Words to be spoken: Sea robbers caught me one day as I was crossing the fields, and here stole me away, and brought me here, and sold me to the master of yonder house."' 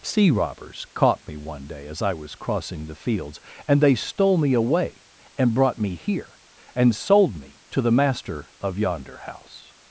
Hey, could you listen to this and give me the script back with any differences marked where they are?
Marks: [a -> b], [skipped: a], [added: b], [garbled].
Sea robbers caught me one day as I was crossing the fields, and [here -> they] stole me away, and brought me here, and sold me to the master of yonder house."'